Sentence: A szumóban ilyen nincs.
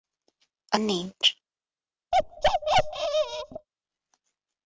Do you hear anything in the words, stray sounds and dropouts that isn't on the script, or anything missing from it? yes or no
yes